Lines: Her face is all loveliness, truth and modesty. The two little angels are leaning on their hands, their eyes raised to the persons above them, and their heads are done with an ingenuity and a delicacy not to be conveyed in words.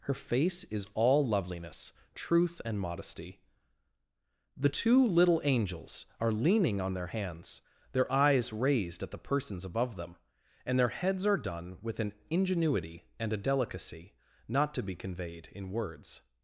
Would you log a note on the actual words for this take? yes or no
yes